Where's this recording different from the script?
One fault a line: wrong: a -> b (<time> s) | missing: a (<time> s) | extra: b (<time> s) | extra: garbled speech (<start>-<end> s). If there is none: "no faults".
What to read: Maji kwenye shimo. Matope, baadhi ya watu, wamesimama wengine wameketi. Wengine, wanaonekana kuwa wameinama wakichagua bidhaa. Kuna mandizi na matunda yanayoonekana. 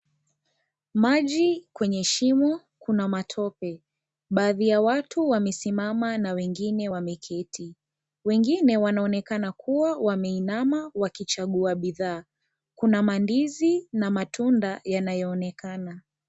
extra: Kuna (2.8 s)
extra: na (6.2 s)